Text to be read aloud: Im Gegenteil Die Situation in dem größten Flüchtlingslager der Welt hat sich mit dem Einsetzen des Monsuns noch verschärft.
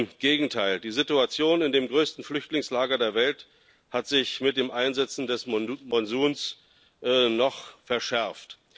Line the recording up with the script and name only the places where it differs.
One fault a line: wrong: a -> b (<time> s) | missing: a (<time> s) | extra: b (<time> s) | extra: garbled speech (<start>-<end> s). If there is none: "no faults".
no faults